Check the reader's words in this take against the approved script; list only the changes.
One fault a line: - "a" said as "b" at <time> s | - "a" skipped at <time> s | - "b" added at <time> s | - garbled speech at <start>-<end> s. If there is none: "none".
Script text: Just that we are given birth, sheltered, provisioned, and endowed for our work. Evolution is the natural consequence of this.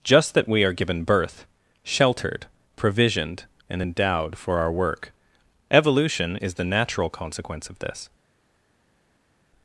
none